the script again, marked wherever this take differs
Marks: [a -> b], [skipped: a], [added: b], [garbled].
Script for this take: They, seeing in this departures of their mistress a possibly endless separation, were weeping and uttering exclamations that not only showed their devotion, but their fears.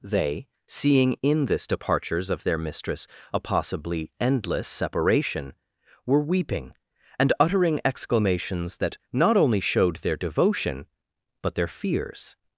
They, seeing in this departures of their mistress a possibly endless separation, were weeping and uttering exclamations that not only showed their devotion, but their fears.